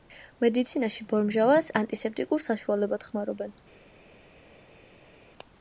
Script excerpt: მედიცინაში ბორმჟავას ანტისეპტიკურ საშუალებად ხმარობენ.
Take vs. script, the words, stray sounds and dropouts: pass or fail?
pass